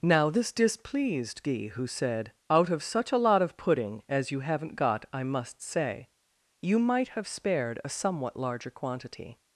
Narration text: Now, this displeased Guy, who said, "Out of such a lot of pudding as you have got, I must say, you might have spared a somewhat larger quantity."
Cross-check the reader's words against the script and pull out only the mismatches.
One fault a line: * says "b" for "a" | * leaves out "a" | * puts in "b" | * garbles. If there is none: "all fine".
* says "haven't" for "have"